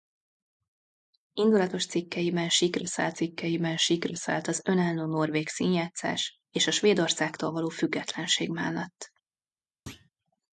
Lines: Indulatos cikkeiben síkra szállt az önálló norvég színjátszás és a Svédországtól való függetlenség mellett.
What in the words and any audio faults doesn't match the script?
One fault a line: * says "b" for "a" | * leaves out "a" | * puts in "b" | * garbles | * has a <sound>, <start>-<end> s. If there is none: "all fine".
* puts in "cikkeiben síkra szállt"
* has a thud, 9.9-10.1 s